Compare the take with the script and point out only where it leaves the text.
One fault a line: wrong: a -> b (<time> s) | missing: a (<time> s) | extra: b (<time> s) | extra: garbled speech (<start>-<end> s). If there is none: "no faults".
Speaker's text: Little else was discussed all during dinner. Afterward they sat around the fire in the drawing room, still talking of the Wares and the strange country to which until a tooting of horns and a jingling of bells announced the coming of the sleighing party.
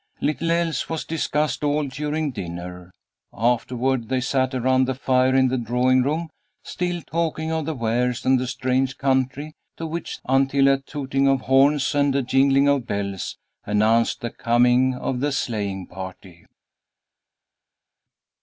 no faults